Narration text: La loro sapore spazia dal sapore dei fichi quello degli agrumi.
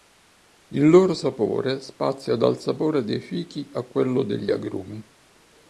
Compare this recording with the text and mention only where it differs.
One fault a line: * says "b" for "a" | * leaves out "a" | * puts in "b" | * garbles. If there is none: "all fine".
* says "Il" for "La"
* puts in "a"